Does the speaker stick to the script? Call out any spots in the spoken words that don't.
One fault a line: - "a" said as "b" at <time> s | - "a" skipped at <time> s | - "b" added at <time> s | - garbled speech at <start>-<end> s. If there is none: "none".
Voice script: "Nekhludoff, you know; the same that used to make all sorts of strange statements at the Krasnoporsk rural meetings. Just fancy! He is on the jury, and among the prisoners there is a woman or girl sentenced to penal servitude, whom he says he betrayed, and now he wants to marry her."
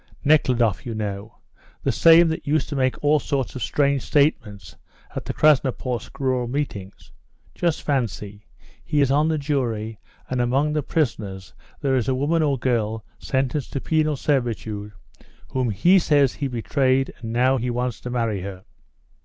none